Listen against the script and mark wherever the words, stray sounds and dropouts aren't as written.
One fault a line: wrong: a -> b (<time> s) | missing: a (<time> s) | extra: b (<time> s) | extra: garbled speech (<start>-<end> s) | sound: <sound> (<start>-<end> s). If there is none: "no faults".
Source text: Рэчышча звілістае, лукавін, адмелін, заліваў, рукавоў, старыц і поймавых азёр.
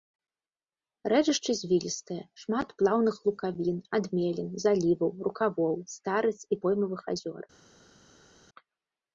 extra: шмат плаўных (2.4 s)